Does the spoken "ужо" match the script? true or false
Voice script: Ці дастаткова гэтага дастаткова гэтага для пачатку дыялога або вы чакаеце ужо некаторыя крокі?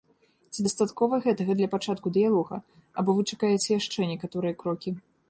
false